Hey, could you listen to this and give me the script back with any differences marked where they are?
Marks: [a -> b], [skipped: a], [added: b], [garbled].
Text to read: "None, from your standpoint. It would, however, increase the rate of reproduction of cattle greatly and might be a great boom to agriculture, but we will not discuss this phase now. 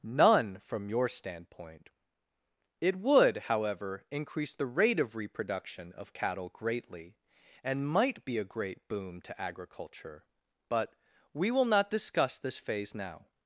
"None, from your standpoint. It would, however, increase the rate of reproduction of cattle greatly and might be a great boom to agriculture, but we will not discuss this phase now.